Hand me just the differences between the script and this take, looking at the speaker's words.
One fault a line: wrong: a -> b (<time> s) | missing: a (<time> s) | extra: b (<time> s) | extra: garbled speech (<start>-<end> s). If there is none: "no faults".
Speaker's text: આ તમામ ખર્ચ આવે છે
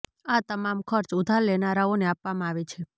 extra: ઉધાર લેનારાઓને આપવામાં (1.2 s)